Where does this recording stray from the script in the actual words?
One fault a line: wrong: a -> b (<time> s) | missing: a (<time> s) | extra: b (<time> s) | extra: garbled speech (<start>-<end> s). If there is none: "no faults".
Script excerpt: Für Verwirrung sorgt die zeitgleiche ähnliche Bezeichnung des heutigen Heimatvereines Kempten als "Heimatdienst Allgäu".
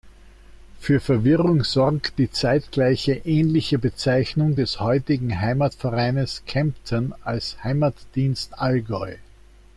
no faults